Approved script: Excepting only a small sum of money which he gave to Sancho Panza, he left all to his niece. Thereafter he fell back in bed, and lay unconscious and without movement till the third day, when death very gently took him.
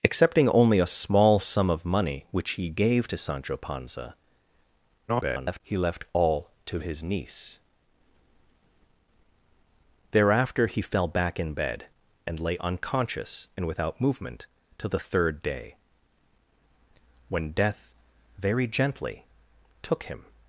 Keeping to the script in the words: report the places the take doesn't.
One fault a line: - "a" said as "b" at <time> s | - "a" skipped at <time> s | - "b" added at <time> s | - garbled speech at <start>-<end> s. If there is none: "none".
- garbled speech at 5.1-5.6 s